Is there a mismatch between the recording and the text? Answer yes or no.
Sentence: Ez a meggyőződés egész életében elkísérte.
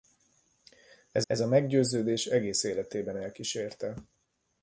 yes